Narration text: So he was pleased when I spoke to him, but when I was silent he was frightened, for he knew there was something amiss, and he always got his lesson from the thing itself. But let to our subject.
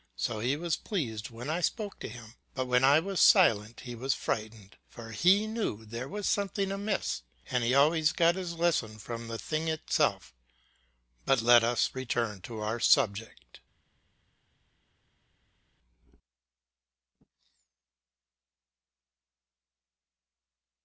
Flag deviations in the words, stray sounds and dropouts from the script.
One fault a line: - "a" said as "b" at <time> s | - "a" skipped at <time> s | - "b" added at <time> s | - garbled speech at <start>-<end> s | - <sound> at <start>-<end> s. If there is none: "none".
- "us return" added at 11.6 s